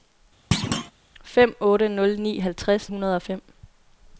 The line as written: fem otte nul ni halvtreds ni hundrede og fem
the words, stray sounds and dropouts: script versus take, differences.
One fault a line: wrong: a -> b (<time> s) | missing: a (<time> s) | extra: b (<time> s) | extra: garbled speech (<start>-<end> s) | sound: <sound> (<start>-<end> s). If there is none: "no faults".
sound: thud (0.5-0.9 s)
missing: ni (2.9 s)